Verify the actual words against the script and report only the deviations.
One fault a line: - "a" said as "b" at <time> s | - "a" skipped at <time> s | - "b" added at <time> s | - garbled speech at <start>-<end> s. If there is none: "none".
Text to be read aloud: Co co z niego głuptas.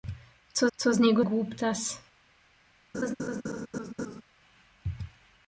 none